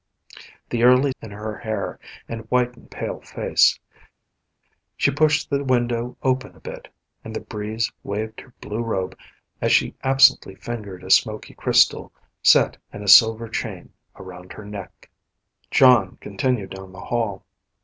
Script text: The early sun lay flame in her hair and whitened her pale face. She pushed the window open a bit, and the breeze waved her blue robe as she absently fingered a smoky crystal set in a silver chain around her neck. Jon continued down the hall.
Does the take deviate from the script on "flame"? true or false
true